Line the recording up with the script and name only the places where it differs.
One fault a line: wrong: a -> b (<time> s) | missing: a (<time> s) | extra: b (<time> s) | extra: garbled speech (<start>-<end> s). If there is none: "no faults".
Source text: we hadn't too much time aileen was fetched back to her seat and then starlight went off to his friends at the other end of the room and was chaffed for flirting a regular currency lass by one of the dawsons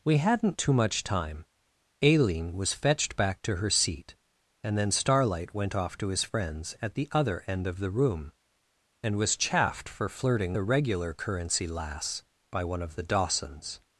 no faults